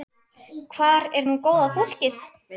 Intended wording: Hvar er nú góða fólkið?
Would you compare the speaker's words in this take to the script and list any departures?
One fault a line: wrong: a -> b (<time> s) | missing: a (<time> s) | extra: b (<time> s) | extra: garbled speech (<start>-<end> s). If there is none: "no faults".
no faults